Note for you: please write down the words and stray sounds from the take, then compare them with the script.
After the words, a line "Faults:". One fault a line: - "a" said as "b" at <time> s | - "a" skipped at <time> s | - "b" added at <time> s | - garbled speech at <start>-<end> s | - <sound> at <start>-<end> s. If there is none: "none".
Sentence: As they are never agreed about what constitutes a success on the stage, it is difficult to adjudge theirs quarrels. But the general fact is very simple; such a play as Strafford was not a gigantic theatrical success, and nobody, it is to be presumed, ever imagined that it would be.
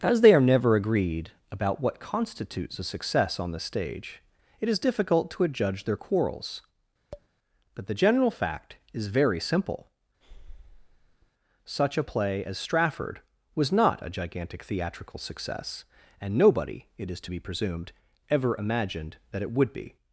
As they are never agreed about what constitutes a success on the stage, it is difficult to adjudge their quarrels. But the general fact is very simple; such a play as Strafford was not a gigantic theatrical success, and nobody, it is to be presumed, ever imagined that it would be.
Faults:
- "theirs" said as "their" at 5.8 s
- tap at 7.1-7.3 s
- breath at 10.2-11.3 s